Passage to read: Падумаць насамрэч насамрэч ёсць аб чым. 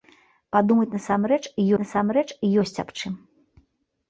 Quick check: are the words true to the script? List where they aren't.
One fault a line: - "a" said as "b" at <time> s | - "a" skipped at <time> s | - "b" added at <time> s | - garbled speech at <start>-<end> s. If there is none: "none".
none